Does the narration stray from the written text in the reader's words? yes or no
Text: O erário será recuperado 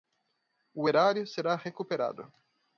no